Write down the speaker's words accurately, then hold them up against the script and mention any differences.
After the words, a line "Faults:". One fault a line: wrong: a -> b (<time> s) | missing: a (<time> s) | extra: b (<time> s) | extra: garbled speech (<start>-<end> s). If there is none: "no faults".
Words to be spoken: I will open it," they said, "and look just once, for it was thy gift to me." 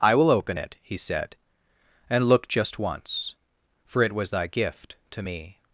I will open it," he said, "and look just once, for it was thy gift to me."
Faults:
wrong: they -> he (0.8 s)